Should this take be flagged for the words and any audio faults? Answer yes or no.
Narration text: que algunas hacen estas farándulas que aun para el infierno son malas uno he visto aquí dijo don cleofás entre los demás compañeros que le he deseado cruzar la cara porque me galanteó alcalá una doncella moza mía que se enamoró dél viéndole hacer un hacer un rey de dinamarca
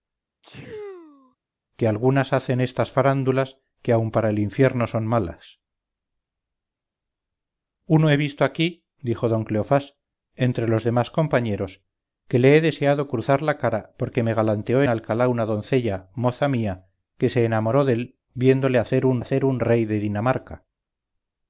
yes